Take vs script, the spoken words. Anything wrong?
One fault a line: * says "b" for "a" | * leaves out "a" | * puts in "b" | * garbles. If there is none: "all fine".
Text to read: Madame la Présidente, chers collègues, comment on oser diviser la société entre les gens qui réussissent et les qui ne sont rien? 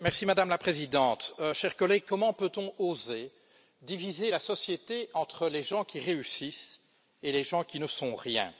* puts in "peut"
* puts in "gens"